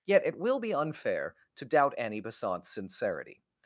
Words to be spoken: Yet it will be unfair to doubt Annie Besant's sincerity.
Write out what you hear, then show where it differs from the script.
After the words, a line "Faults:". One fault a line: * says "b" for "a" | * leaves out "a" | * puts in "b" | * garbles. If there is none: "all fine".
Yet it will be unfair to doubt Annie Besant's sincerity.
Faults:
all fine